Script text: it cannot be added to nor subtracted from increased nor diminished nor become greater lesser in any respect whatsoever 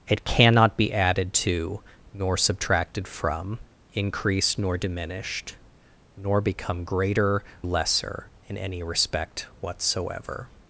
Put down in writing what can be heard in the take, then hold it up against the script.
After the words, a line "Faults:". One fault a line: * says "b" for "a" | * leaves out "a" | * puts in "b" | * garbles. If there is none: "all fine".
it cannot be added to nor subtracted from increased nor diminished nor become greater lesser in any respect whatsoever
Faults:
all fine